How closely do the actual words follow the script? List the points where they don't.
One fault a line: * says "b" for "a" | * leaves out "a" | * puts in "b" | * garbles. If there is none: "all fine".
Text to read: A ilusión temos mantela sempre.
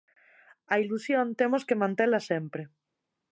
* puts in "que"